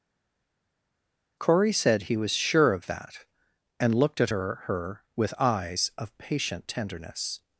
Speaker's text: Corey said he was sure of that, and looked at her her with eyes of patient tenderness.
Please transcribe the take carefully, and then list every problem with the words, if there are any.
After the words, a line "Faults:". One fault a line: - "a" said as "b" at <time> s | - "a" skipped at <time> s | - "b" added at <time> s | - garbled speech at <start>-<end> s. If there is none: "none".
Corey said he was sure of that, and looked at her her with eyes of patient tenderness.
Faults:
none